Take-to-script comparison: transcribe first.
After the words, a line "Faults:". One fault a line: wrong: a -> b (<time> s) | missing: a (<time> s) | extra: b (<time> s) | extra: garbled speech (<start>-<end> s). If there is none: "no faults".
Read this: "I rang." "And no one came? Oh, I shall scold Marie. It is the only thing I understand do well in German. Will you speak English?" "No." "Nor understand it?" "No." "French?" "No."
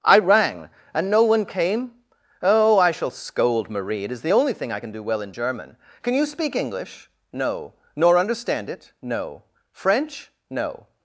"I rang." "And no one came? Oh, I shall scold Marie. It is the only thing I can do well in German. Can you speak English?" "No." "Nor understand it?" "No." "French?" "No."
Faults:
wrong: understand -> can (4.8 s)
wrong: Will -> Can (6.0 s)